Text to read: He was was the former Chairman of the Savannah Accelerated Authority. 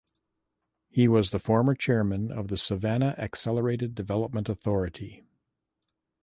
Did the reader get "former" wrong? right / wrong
right